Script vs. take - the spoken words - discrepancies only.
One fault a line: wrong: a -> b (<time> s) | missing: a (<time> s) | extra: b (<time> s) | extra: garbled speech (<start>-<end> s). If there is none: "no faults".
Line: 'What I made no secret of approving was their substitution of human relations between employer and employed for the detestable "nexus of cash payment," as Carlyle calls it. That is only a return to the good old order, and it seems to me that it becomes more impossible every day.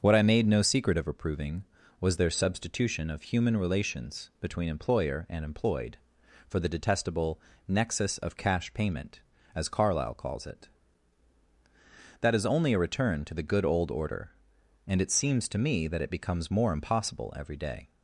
no faults